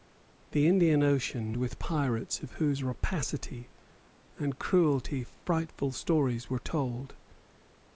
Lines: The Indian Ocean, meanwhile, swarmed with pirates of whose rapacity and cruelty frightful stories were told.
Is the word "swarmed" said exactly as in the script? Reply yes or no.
no